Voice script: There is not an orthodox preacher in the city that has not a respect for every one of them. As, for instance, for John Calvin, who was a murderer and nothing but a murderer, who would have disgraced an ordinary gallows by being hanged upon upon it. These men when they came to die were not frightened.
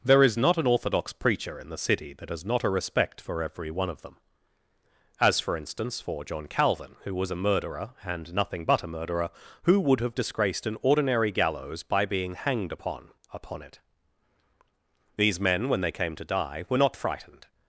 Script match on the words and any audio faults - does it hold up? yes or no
yes